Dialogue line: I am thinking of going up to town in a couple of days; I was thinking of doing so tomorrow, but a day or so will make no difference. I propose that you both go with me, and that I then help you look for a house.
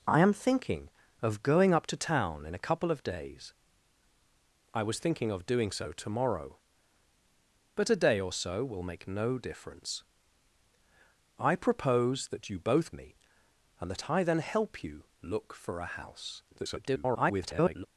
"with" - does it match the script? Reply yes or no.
no